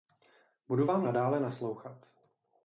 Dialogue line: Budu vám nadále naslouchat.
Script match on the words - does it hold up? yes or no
yes